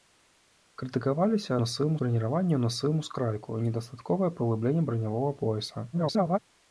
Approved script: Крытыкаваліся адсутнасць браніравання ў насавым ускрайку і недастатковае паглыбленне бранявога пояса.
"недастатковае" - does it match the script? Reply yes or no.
yes